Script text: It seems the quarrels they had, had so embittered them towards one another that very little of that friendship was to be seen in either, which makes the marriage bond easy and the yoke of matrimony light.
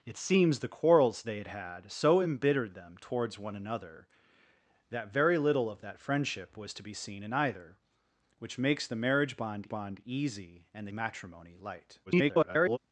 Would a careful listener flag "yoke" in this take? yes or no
yes